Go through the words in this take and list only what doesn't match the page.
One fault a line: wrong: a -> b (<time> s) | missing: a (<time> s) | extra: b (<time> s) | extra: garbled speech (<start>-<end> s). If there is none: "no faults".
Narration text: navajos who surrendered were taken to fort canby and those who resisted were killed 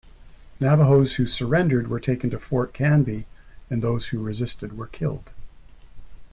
no faults